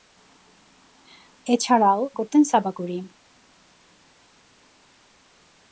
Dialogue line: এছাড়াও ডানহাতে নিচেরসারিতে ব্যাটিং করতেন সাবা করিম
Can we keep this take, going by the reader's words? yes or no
no